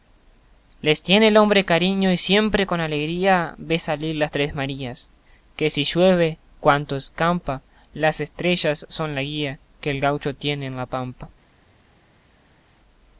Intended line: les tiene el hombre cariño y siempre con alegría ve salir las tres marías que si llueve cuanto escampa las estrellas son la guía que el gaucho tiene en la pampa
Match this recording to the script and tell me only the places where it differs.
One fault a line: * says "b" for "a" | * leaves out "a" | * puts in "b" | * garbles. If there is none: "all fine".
all fine